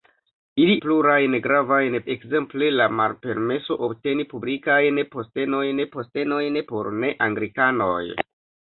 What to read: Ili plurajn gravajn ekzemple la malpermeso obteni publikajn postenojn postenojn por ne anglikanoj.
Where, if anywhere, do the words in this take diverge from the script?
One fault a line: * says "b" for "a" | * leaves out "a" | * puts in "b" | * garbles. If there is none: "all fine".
all fine